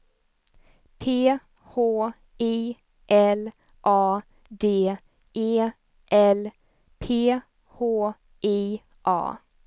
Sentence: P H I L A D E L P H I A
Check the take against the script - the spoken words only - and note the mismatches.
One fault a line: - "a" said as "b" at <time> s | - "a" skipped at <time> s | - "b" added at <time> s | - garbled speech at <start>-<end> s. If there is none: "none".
none